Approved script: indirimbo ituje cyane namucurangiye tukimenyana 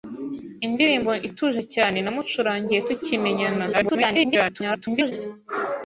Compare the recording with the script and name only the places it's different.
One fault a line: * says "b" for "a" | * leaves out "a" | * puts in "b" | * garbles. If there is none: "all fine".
* garbles